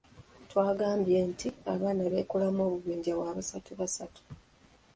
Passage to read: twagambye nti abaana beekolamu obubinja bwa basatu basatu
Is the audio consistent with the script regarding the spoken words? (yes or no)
yes